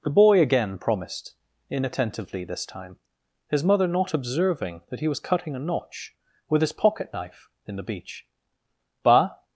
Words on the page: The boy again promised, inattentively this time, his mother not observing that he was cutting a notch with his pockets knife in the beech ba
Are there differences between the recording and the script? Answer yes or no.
yes